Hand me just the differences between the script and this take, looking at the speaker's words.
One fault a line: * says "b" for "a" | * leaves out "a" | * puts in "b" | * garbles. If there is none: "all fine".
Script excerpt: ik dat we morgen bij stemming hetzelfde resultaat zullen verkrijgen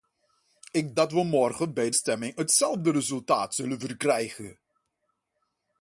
all fine